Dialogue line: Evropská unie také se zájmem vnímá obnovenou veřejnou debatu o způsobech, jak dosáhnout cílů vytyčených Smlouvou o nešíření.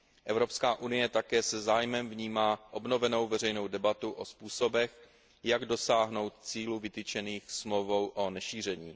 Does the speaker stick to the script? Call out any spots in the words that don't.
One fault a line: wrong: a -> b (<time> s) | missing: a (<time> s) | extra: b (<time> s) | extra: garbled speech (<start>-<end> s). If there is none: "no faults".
no faults